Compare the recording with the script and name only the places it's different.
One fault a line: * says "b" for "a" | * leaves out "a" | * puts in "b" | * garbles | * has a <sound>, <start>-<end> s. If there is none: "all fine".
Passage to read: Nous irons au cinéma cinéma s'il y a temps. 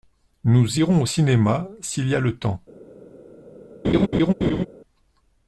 * leaves out "cinéma"
* puts in "le"
* has a laugh, 3.8-4.7 s